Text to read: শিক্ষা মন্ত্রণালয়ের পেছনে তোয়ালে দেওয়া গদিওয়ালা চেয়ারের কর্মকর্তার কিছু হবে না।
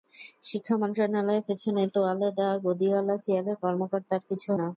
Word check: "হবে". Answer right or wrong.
wrong